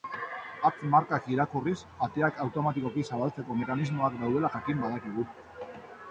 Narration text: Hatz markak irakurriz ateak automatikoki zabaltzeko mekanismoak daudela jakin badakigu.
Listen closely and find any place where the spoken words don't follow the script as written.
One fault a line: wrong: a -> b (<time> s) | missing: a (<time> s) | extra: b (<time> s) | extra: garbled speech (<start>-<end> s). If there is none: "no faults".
no faults